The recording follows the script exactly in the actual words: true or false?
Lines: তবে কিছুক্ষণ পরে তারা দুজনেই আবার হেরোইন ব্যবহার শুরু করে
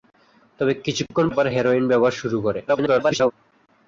false